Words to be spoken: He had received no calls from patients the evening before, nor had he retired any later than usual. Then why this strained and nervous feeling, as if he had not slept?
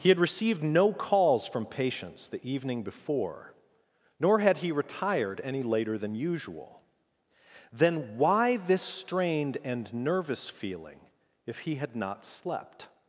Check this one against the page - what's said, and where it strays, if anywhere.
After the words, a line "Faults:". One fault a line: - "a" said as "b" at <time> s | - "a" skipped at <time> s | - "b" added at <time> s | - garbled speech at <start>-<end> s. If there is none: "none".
He had received no calls from patients the evening before, nor had he retired any later than usual. Then why this strained and nervous feeling, if he had not slept?
Faults:
- "as" skipped at 11.0 s